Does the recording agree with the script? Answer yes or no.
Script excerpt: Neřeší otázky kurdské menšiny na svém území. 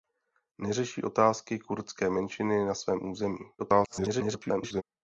no